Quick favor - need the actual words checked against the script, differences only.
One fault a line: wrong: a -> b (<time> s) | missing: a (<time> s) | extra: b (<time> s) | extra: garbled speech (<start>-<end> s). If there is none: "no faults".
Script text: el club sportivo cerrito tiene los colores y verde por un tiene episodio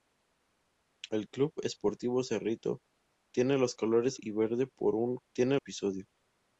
no faults